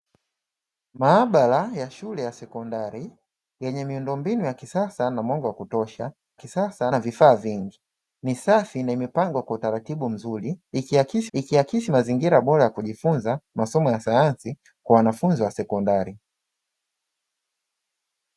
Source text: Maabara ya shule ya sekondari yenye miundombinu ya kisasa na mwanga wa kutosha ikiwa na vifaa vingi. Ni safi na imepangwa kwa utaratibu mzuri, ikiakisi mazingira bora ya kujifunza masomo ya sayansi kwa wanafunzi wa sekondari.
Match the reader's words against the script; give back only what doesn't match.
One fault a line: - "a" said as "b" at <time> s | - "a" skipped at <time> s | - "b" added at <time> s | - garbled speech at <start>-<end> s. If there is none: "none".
- "ikiwa" said as "kisasa" at 6.3 s
- "ikiakisi" added at 11.3 s